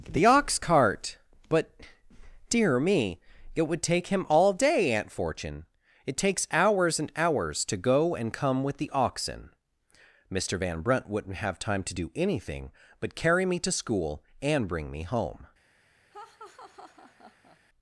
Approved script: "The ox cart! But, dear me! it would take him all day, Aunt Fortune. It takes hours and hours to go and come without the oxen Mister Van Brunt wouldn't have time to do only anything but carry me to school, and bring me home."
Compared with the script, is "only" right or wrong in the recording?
wrong